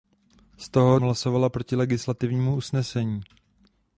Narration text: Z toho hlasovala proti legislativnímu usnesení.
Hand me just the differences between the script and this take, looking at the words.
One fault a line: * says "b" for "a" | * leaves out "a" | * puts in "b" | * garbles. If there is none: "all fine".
all fine